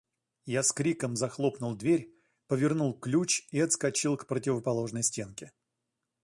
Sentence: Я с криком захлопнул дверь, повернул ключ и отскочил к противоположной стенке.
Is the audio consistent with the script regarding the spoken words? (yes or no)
yes